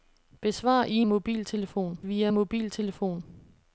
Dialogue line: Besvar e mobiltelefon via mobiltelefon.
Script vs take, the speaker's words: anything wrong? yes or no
no